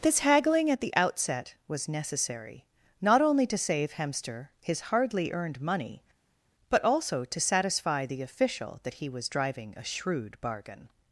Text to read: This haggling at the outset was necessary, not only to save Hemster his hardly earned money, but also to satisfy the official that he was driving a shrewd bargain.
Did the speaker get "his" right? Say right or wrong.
right